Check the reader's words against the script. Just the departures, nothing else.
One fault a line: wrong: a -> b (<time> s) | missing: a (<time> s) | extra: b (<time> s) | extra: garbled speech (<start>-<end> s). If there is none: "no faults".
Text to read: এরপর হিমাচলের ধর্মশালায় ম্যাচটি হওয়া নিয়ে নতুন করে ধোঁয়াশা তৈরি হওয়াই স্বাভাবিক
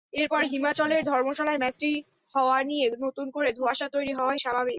no faults